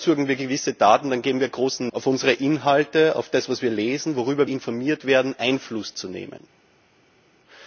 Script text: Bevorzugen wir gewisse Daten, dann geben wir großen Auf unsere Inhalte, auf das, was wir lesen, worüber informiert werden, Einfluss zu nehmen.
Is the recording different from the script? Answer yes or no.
no